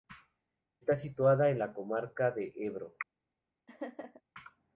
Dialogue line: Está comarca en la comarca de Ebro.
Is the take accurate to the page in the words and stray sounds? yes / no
no